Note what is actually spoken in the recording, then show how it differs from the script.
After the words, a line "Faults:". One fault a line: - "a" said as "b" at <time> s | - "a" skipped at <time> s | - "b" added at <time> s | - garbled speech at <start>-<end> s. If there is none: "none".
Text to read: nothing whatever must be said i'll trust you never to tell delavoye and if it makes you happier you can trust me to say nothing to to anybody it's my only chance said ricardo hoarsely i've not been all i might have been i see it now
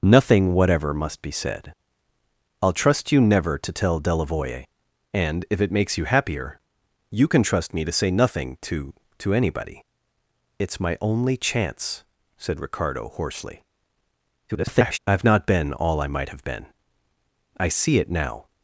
nothing whatever must be said i'll trust you never to tell delavoye and if it makes you happier you can trust me to say nothing to to anybody it's my only chance said ricardo hoarsely [garbled] i've not been all i might have been i see it now
Faults:
- garbled speech at 14.5-15.0 s